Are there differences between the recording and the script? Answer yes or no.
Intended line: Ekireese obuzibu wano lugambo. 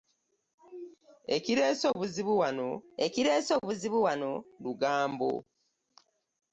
yes